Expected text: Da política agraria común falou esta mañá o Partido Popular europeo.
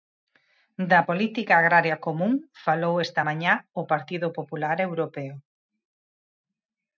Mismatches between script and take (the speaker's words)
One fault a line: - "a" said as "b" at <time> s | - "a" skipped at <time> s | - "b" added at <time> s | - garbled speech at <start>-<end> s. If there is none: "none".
none